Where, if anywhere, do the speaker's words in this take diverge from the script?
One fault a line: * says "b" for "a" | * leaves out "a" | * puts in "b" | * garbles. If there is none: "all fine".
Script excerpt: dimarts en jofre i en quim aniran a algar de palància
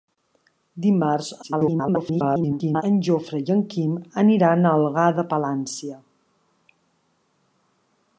* garbles